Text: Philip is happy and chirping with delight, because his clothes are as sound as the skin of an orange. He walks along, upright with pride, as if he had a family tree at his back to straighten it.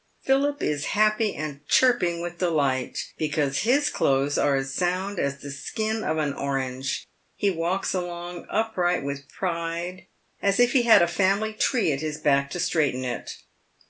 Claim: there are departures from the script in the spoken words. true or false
false